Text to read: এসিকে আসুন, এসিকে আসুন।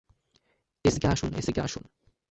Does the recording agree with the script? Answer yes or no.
yes